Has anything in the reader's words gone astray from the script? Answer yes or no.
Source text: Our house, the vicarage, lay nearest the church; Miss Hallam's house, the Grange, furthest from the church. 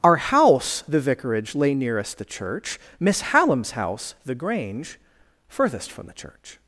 no